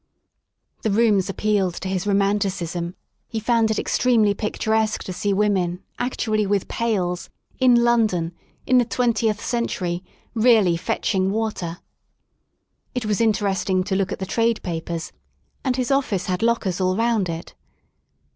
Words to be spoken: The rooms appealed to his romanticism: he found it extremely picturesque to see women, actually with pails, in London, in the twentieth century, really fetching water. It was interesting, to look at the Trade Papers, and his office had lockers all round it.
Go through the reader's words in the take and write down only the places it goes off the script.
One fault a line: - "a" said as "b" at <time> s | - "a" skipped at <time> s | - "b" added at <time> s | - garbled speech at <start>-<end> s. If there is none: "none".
none